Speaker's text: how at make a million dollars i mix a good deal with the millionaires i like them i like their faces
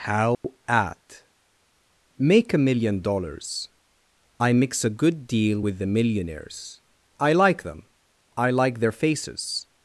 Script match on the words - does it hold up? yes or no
yes